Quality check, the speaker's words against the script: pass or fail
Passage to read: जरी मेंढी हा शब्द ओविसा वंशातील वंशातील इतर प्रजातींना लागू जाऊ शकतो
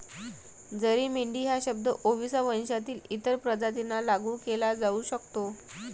fail